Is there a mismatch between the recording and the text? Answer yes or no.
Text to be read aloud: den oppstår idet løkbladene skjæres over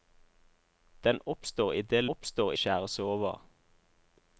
yes